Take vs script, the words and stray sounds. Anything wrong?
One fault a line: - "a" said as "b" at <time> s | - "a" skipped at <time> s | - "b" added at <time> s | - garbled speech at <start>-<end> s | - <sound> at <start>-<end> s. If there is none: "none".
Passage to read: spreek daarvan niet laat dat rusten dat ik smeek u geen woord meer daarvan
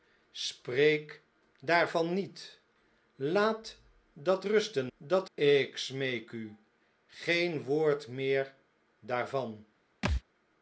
- thud at 10.0-10.2 s